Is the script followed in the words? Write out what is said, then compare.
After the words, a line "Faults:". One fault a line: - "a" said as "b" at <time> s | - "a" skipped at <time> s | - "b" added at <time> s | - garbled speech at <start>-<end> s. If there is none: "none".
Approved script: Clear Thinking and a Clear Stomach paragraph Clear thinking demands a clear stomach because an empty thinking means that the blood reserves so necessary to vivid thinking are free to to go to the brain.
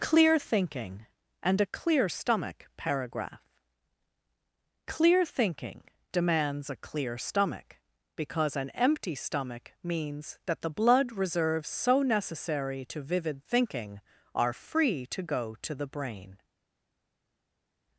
Clear Thinking and a Clear Stomach paragraph Clear thinking demands a clear stomach because an empty stomach means that the blood reserves so necessary to vivid thinking are free to go to the brain.
Faults:
- "thinking" said as "stomach" at 9.1 s
- "to" skipped at 15.2 s